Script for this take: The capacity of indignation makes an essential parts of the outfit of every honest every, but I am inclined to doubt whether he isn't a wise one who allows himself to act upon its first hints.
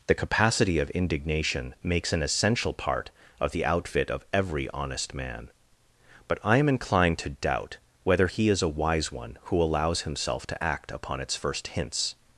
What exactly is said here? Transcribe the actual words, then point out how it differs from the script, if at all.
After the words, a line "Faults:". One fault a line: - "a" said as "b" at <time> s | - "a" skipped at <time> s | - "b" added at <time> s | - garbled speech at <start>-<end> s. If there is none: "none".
The capacity of indignation makes an essential part of the outfit of every honest man, but I am inclined to doubt whether he is a wise one who allows himself to act upon its first hints.
Faults:
- "parts" said as "part" at 2.7 s
- "every" said as "man" at 5.1 s
- "isn't" said as "is" at 8.5 s